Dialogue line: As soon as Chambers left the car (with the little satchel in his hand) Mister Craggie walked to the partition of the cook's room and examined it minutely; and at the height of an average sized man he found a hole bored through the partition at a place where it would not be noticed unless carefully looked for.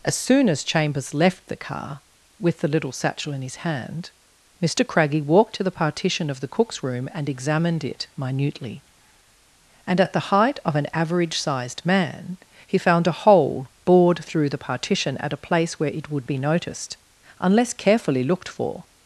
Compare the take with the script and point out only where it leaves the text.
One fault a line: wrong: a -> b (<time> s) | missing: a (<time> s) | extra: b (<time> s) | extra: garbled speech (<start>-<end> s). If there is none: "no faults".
missing: not (16.3 s)